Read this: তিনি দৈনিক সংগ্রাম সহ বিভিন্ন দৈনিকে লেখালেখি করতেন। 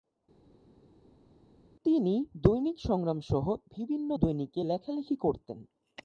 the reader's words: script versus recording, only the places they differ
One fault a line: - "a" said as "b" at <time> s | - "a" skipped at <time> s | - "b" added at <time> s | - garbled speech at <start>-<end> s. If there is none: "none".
none